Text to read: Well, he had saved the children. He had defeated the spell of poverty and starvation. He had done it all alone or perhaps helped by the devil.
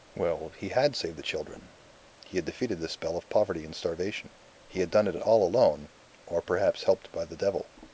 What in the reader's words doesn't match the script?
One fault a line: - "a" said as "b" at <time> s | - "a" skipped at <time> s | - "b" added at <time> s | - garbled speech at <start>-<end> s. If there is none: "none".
none